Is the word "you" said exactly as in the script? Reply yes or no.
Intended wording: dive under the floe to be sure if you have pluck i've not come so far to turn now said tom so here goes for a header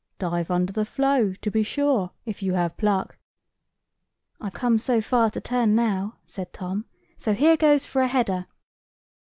yes